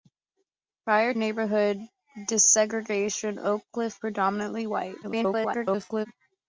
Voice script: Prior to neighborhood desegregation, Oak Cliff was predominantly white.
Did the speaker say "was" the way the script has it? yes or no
no